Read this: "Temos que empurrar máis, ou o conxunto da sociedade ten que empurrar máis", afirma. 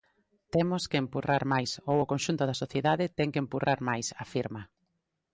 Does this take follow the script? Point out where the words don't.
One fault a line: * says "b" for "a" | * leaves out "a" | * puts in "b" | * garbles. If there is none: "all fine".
all fine